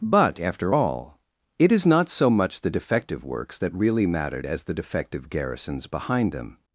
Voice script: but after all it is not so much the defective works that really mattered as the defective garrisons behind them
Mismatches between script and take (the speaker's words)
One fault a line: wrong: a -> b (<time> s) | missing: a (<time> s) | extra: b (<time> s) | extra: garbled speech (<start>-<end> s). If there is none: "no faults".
no faults